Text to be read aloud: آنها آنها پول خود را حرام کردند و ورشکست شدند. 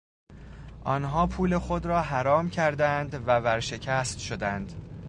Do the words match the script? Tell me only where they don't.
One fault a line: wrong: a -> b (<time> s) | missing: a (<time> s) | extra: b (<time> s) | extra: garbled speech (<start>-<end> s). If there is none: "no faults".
missing: آنها (1.3 s)